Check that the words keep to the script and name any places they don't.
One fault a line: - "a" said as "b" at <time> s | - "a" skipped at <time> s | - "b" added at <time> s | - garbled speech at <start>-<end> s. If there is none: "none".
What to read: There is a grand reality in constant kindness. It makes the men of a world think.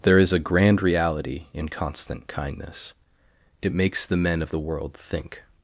- "a" said as "the" at 4.5 s